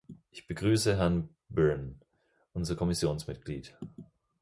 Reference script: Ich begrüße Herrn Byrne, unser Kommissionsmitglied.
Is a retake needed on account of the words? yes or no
no